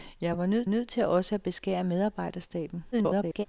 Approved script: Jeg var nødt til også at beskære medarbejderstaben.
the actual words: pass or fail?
fail